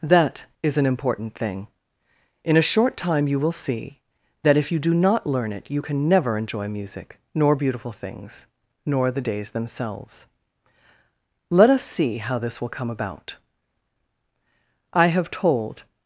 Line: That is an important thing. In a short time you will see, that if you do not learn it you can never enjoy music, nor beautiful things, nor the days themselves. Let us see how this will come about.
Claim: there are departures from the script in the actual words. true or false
true